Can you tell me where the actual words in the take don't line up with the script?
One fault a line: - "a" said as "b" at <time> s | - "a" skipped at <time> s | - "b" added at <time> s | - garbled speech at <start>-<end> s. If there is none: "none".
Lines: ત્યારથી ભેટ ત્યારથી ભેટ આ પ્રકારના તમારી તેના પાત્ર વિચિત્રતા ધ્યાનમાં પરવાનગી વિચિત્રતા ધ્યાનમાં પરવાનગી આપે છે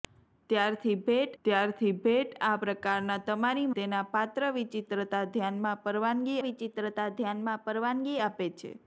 none